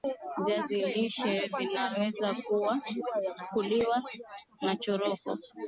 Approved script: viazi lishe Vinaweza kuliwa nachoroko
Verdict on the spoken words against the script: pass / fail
pass